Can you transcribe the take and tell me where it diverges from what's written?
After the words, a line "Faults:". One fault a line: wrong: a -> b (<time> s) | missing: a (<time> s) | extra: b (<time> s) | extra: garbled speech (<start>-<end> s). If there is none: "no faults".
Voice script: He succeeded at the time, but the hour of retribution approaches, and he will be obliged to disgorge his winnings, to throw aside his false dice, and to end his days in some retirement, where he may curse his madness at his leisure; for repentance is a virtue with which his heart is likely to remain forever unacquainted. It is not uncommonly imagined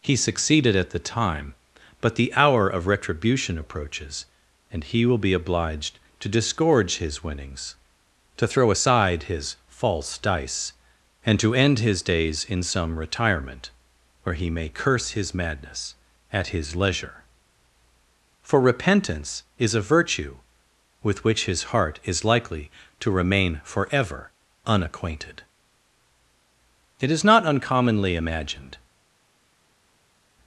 He succeeded at the time, but the hour of retribution approaches, and he will be obliged to disgorge his winnings, to throw aside his false dice, and to end his days in some retirement, where he may curse his madness at his leisure; for repentance is a virtue with which his heart is likely to remain forever unacquainted. It is not uncommonly imagined
Faults:
no faults